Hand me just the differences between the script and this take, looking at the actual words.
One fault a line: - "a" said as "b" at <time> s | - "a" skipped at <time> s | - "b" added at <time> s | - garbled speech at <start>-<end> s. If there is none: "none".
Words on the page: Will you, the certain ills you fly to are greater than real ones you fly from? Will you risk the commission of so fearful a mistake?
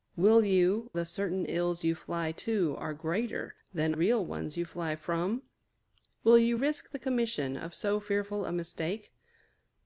none